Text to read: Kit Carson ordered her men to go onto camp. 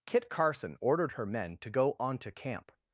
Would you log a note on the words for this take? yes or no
no